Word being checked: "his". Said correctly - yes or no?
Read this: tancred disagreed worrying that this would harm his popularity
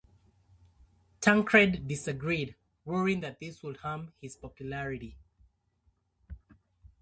yes